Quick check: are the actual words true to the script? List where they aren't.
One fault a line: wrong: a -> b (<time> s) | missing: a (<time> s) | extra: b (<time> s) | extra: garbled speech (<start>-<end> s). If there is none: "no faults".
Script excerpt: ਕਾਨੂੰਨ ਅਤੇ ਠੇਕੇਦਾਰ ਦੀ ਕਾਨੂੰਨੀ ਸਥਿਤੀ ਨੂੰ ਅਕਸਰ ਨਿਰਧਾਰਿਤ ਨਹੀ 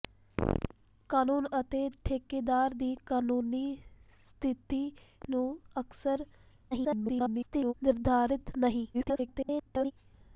extra: garbled speech (6.7-7.7 s)
extra: garbled speech (8.9-9.9 s)